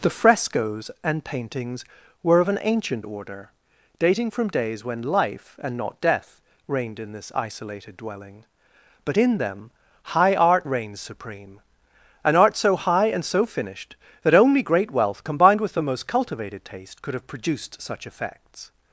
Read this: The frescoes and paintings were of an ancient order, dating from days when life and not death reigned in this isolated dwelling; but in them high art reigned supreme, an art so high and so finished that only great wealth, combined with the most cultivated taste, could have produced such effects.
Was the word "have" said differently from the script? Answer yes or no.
no